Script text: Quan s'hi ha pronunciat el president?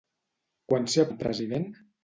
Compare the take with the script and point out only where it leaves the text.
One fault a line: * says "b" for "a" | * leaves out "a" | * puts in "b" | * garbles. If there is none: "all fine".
* leaves out "pronunciat"